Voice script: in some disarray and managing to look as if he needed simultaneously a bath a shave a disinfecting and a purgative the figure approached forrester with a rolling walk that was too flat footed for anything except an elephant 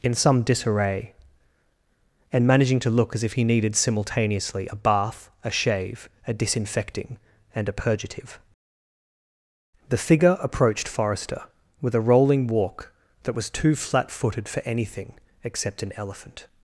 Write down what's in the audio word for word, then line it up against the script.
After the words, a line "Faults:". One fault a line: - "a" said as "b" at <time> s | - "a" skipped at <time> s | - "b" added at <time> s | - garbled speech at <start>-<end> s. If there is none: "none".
in some disarray and managing to look as if he needed simultaneously a bath a shave a disinfecting and a purgative the figure approached forrester with a rolling walk that was too flat footed for anything except an elephant
Faults:
none